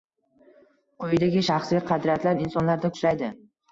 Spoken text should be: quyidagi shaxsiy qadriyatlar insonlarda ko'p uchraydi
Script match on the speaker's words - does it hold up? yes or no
no